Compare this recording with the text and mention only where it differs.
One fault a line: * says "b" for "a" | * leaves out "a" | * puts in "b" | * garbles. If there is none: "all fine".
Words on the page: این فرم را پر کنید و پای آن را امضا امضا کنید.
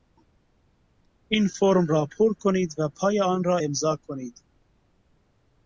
* leaves out "امضا"